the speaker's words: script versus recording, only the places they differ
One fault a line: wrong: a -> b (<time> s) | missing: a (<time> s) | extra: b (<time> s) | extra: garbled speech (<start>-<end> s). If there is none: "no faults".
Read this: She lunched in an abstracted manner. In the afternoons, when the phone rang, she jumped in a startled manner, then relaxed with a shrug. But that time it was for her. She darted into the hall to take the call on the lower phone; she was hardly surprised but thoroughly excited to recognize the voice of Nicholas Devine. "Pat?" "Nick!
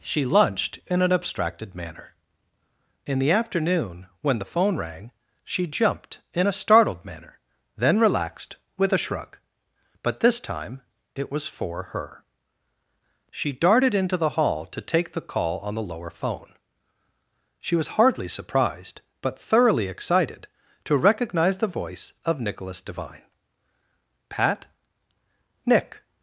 wrong: afternoons -> afternoon (3.3 s)
wrong: that -> this (10.2 s)